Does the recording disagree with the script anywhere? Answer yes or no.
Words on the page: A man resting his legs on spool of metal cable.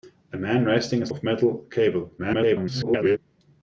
yes